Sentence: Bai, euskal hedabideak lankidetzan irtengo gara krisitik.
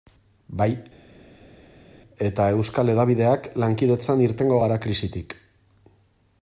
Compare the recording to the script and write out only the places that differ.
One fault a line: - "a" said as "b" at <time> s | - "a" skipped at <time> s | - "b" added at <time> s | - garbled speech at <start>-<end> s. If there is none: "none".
- "eta" added at 2.3 s